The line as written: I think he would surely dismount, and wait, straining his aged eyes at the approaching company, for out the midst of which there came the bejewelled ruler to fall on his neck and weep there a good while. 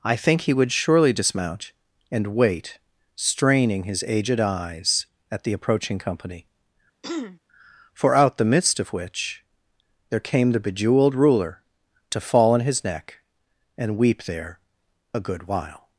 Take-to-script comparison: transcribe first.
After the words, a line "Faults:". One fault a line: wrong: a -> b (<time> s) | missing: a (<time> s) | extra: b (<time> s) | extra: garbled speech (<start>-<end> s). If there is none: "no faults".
I think he would surely dismount, and wait, straining his aged eyes at the approaching company, for out the midst of which there came the bejewelled ruler to fall on his neck and weep there a good while.
Faults:
no faults